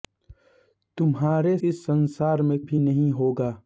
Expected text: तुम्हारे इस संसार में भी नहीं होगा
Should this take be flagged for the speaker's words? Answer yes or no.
no